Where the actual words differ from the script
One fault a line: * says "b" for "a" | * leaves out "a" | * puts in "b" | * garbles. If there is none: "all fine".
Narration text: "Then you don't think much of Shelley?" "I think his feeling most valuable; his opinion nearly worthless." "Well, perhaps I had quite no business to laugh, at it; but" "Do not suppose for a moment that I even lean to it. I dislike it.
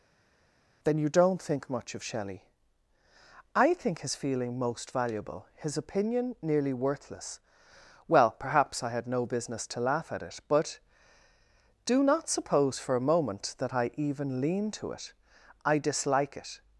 * leaves out "quite"